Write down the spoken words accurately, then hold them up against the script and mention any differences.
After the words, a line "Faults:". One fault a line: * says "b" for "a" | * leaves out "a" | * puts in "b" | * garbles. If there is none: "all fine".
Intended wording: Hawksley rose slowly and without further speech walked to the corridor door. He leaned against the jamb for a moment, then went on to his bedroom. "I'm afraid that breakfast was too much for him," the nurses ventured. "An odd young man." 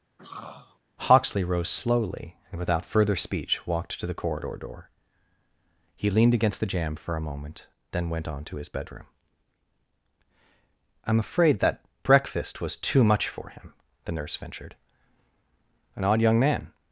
Hawksley rose slowly and without further speech walked to the corridor door. He leaned against the jamb for a moment, then went on to his bedroom. "I'm afraid that breakfast was too much for him," the nurse ventured. "An odd young man."
Faults:
* says "nurse" for "nurses"